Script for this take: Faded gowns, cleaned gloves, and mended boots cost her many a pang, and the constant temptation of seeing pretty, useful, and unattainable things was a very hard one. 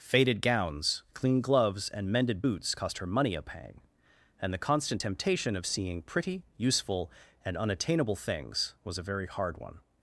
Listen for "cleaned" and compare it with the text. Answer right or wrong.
wrong